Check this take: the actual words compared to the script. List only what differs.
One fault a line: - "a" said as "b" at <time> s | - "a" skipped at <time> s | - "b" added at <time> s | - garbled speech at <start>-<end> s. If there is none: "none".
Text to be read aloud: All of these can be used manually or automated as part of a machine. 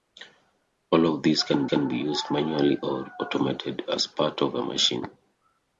- "can" added at 1.7 s